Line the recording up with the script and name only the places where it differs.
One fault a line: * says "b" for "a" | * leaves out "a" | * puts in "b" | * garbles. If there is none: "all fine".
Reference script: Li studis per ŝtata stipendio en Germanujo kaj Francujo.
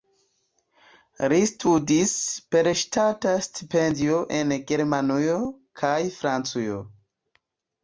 all fine